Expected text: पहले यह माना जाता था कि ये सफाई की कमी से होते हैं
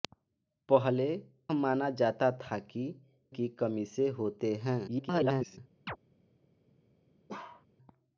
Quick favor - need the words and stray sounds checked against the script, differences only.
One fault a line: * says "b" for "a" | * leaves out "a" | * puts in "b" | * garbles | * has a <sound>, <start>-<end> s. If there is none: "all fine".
* leaves out "यह"
* leaves out "ये सफाई"
* garbles
* has a chirp, 5.9-6.0 s
* has a bark, 7.3-7.7 s